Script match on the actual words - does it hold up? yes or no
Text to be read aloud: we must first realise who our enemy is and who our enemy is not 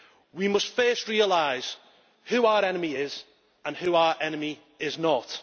yes